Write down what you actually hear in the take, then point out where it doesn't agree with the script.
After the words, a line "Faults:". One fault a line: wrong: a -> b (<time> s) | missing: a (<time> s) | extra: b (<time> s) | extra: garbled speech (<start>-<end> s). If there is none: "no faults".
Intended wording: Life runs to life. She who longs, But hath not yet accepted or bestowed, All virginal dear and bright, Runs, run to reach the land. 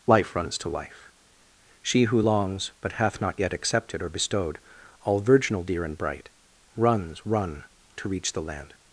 Life runs to life. She who longs, But hath not yet accepted or bestowed, All virginal dear and bright, Runs, run to reach the land.
Faults:
no faults